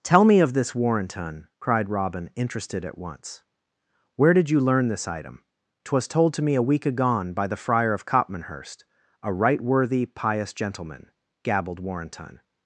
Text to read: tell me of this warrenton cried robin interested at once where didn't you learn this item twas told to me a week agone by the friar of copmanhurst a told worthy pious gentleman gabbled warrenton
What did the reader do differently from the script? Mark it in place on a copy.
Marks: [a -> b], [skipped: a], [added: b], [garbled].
tell me of this warrenton cried robin interested at once where [didn't -> did] you learn this item twas told to me a week agone by the friar of copmanhurst a [told -> right] worthy pious gentleman gabbled warrenton